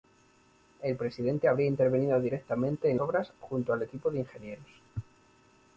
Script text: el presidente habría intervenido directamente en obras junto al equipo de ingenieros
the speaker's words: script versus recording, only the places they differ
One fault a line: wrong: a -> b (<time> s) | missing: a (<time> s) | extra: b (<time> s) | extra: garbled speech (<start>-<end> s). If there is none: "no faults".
no faults